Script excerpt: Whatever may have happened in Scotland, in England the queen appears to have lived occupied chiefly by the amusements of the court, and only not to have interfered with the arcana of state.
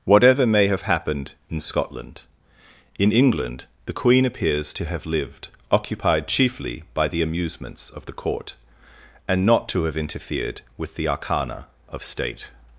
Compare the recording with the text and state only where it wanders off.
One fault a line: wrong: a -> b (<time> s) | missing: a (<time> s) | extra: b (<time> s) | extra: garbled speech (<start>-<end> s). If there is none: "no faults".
missing: only (9.5 s)